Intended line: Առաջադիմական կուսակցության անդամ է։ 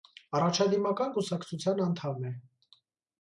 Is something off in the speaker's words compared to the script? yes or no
no